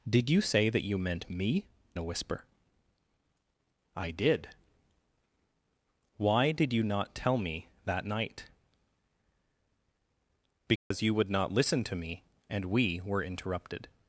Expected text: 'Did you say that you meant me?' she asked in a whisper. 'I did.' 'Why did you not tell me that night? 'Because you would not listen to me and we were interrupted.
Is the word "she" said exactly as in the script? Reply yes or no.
no